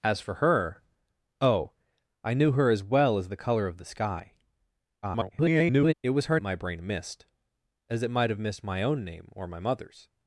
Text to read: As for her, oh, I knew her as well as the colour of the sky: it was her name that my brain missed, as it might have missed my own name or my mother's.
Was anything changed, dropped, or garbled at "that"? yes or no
yes